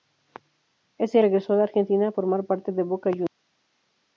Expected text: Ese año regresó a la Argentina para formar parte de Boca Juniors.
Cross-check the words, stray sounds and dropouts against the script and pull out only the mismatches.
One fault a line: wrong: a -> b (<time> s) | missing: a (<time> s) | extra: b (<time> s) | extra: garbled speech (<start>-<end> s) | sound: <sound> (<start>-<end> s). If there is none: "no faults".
missing: año (1.2 s)
missing: para (2.1 s)